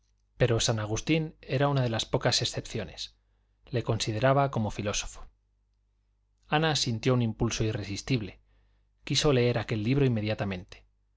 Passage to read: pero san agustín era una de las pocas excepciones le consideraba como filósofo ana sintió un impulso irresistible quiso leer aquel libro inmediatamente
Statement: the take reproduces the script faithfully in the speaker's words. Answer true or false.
true